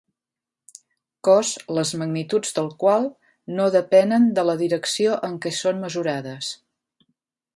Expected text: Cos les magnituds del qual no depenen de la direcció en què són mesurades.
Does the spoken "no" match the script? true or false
true